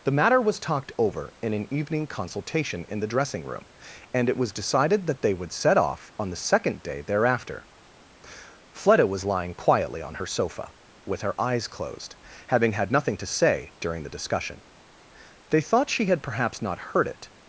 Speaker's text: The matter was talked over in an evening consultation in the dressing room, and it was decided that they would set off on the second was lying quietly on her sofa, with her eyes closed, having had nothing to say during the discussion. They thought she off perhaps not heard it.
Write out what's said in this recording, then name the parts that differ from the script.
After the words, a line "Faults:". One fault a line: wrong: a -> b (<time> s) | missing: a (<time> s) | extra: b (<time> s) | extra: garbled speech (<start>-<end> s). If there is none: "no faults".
The matter was talked over in an evening consultation in the dressing room, and it was decided that they would set off on the second day thereafter. Fleda was lying quietly on her sofa, with her eyes closed, having had nothing to say during the discussion. They thought she had perhaps not heard it.
Faults:
extra: day thereafter Fleda (6.8 s)
wrong: off -> had (16.1 s)